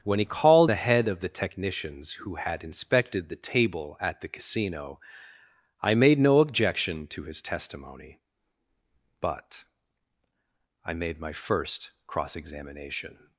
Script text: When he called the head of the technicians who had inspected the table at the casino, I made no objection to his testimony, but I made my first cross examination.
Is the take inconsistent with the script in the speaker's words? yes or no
no